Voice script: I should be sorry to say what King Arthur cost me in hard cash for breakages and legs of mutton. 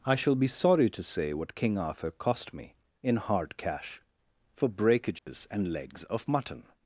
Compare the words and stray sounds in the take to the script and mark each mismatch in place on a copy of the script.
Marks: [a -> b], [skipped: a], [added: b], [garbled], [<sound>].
I [should -> shall] be sorry to say what King Arthur cost me in hard cash for breakages [dropout] and legs of mutton.